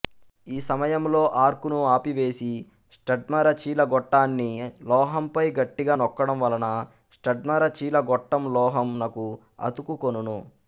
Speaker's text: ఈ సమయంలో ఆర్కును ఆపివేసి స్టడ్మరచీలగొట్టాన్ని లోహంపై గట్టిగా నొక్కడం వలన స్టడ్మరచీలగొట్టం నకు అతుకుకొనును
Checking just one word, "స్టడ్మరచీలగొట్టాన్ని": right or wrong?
right